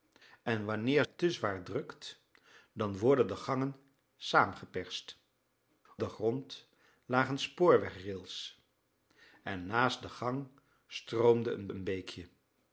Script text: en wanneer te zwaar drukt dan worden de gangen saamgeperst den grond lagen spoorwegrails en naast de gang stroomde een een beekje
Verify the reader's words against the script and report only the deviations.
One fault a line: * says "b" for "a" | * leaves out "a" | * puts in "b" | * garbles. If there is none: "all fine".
all fine